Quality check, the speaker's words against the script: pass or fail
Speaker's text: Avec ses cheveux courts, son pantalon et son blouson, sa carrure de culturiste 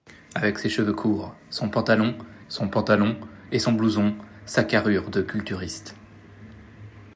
fail